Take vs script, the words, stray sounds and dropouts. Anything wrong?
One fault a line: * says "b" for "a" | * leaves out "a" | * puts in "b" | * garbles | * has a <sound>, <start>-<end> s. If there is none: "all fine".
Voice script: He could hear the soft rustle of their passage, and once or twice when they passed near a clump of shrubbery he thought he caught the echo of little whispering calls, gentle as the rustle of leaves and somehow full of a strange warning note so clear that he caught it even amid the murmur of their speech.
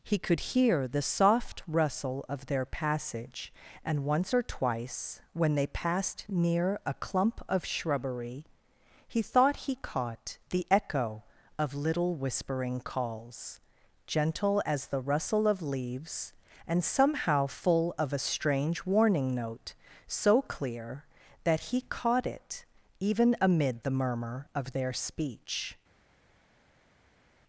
all fine